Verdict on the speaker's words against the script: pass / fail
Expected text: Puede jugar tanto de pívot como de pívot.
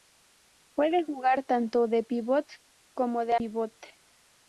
pass